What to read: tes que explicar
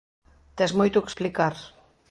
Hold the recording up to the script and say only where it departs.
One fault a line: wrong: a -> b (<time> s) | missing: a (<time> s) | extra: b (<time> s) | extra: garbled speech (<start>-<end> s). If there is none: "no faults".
extra: moito (0.8 s)